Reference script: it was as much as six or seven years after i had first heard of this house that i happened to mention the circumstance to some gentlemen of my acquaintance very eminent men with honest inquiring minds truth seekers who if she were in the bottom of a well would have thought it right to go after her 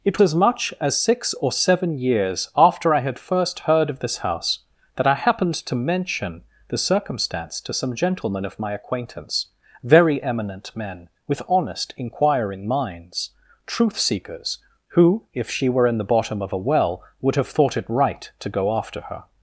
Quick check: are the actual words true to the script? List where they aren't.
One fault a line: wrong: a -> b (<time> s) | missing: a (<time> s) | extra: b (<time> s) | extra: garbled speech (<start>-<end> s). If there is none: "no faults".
missing: was (0.2 s)